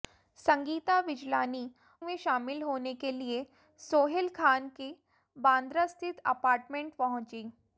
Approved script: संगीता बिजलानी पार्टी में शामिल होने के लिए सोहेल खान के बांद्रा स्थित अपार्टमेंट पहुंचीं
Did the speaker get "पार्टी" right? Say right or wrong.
wrong